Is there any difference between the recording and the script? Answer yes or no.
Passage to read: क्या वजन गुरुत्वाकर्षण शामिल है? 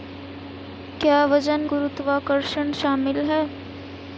no